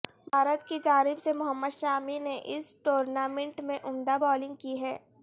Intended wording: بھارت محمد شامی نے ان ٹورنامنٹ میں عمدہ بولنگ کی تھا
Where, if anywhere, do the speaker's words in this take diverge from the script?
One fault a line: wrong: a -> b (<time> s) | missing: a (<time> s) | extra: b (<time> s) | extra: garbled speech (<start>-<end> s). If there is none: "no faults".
extra: کی جانب سے (0.6 s)
wrong: ان -> اس (2.5 s)
wrong: تھا -> ہے (4.8 s)